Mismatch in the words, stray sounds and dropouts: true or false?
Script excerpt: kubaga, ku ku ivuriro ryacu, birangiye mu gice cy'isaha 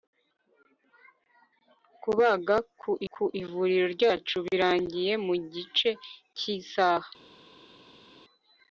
false